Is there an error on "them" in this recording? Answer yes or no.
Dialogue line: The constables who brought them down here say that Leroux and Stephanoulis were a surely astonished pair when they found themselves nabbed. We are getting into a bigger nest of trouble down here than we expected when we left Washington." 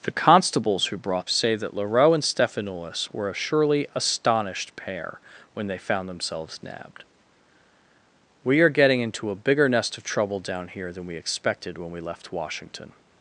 yes